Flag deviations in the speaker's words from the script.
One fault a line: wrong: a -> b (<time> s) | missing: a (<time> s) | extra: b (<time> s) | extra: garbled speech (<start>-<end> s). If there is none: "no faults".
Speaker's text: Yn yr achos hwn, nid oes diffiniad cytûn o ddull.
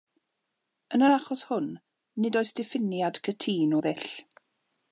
no faults